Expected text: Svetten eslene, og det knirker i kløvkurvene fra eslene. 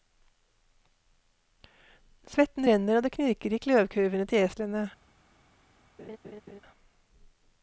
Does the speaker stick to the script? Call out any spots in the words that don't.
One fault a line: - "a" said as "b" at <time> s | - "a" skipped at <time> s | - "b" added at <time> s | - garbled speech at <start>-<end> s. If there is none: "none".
- "eslene" said as "renner" at 2.7 s
- "fra" said as "til" at 4.3 s